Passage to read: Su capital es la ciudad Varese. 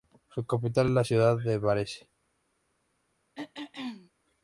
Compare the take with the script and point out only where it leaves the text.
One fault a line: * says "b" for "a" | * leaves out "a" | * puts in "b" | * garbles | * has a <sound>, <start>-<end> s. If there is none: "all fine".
* puts in "de"
* has a throat clearing, 3.4-4.1 s